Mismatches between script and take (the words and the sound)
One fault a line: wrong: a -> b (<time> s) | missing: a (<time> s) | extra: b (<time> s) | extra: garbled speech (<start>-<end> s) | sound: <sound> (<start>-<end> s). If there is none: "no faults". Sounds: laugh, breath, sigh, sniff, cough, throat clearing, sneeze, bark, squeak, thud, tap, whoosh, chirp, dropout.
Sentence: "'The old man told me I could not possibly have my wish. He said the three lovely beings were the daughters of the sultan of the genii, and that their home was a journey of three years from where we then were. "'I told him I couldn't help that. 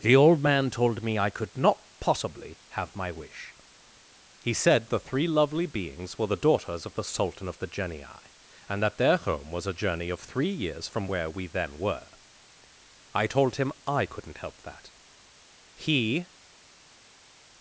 extra: He (15.7 s)